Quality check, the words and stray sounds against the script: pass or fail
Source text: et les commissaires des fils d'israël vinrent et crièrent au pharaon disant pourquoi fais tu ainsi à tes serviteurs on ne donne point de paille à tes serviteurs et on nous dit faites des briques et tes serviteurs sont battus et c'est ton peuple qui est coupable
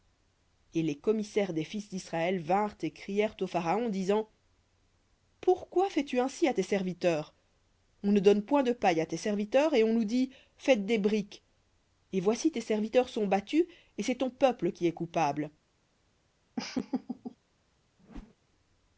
fail